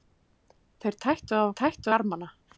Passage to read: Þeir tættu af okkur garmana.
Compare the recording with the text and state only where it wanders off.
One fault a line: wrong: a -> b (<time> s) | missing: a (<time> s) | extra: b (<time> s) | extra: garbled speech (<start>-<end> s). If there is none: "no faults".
wrong: okkur -> tættu (1.6 s)